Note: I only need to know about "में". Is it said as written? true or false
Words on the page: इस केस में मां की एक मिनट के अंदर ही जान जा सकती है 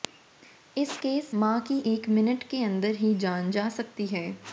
false